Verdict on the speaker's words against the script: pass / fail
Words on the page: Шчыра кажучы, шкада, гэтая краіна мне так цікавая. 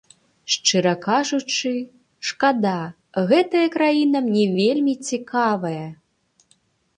fail